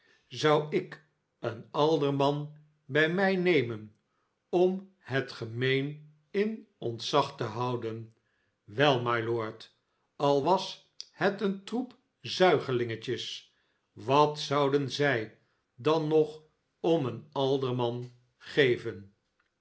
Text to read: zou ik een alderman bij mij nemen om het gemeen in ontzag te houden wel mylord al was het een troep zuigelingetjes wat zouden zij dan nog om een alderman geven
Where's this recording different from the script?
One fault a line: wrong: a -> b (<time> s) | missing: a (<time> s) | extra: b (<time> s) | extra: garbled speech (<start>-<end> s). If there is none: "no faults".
no faults